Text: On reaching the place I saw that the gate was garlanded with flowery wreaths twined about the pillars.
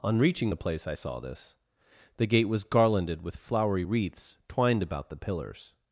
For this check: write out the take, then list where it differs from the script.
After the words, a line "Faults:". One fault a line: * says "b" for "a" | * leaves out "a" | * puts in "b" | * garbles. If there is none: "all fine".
On reaching the place I saw this the gate was garlanded with flowery wreaths twined about the pillars.
Faults:
* says "this" for "that"